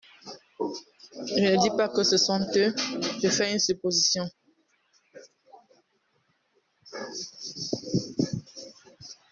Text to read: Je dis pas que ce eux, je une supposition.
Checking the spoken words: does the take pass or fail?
fail